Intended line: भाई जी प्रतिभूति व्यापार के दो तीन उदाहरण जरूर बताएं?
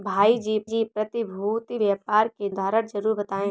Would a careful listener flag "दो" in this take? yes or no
yes